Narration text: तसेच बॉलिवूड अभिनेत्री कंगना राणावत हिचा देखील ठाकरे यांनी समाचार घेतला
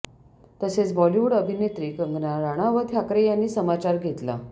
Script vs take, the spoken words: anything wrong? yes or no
yes